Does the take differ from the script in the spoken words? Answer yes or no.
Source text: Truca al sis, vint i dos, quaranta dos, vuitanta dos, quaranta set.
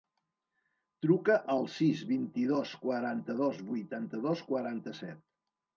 no